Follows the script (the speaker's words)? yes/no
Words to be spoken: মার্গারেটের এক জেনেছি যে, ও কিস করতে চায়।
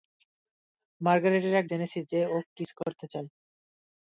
yes